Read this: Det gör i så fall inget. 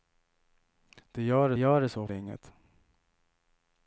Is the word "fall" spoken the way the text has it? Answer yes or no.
no